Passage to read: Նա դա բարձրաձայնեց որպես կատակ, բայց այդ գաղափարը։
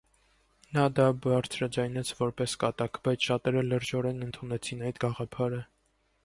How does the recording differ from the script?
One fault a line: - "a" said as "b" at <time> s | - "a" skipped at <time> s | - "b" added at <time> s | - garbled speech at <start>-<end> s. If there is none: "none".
- "շատերը լրջորեն ընդունեցին" added at 3.3 s